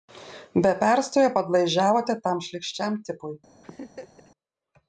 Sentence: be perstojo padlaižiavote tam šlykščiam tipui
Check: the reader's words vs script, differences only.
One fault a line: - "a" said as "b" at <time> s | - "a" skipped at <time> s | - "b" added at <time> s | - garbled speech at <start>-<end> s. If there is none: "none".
none